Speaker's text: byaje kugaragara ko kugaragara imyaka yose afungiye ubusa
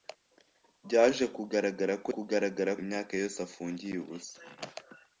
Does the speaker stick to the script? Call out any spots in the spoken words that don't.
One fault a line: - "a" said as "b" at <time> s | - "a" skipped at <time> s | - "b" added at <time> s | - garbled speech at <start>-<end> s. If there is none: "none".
none